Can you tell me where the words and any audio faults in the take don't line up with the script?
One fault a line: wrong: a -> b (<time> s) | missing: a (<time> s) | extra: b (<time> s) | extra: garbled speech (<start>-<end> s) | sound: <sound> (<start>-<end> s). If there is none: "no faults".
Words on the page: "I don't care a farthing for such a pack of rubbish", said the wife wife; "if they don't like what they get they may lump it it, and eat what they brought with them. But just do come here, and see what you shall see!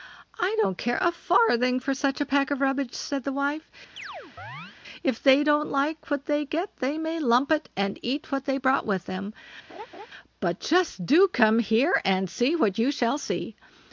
missing: wife (3.7 s)
sound: chirp (4.0-4.8 s)
missing: it (7.7 s)
sound: laugh (9.7-10.1 s)